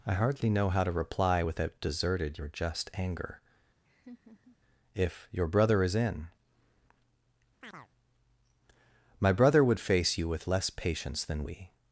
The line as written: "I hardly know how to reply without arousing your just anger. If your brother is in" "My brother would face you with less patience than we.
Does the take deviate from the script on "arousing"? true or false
true